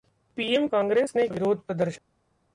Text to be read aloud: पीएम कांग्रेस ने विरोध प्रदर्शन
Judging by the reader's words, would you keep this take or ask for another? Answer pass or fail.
pass